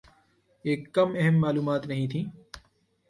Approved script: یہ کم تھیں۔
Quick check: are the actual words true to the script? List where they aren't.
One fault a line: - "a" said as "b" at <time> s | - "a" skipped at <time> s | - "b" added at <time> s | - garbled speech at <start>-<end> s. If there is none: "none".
- "اہم معلومات نہیں" added at 1.2 s